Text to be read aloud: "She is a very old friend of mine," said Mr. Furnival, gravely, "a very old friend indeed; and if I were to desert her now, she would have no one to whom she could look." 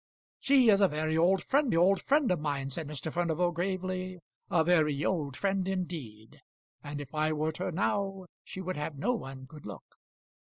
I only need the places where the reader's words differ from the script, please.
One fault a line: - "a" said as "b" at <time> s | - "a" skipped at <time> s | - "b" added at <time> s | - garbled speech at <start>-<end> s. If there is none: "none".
- "old friend" added at 1.7 s
- "to desert" skipped at 7.5 s
- "to whom she" skipped at 9.5 s